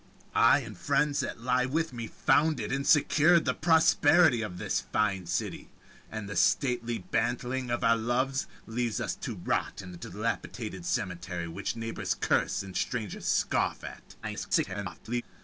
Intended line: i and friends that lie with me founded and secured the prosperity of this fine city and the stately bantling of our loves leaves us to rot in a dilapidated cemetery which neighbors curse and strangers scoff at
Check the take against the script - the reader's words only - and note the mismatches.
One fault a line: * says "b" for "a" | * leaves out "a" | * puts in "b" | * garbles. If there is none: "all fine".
* garbles